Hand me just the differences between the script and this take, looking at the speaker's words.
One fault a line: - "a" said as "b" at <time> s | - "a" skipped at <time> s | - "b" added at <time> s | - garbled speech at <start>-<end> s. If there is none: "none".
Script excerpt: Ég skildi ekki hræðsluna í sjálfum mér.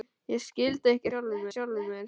- "hræðsluna" said as "sjálfum" at 1.1 s